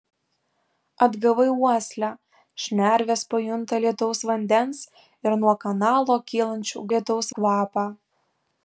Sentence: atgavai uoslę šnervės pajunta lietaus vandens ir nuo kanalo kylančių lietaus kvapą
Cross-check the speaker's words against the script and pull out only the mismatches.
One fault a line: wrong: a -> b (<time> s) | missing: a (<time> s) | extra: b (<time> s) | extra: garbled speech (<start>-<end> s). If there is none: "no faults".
no faults